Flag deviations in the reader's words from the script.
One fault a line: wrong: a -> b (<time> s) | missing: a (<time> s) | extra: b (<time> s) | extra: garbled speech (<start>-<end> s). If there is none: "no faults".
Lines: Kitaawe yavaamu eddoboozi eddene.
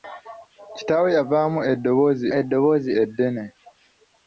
extra: eddoboozi (2.4 s)